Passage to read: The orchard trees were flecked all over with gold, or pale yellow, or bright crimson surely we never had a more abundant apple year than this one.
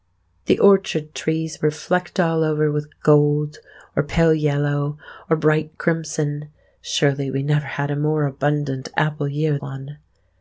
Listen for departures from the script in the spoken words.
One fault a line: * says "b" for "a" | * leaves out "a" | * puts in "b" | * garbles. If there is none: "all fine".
* leaves out "than this"